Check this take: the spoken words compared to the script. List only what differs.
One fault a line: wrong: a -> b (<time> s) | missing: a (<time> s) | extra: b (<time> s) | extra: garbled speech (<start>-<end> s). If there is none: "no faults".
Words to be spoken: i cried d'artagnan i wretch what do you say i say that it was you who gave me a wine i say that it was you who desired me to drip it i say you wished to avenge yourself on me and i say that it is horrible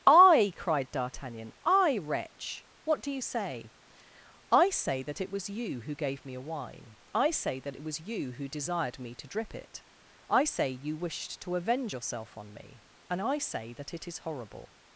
no faults